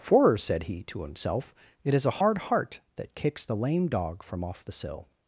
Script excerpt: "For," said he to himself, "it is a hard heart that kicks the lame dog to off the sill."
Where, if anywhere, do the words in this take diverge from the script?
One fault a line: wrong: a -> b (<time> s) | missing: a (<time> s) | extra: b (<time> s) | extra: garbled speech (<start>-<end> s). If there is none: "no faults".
wrong: to -> from (4.2 s)